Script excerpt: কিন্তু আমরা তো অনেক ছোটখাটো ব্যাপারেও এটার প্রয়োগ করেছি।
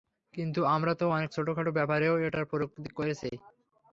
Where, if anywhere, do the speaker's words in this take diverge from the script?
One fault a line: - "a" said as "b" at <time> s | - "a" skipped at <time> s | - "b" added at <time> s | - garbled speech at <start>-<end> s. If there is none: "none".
none